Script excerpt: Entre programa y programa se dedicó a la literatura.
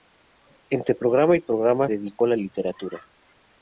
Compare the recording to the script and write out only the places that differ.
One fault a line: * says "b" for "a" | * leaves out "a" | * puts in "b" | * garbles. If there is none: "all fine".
* leaves out "se"